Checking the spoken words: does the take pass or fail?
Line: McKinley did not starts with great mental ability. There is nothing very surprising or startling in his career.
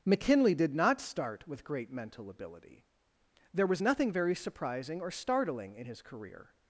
fail